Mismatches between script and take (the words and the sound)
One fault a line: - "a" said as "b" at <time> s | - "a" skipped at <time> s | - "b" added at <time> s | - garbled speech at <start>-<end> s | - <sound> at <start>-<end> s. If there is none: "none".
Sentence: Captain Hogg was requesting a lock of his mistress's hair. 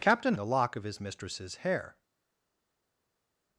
- "Hogg was requesting" skipped at 0.3 s